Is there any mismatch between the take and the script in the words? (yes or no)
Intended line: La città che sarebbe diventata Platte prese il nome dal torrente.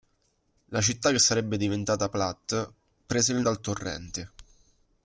yes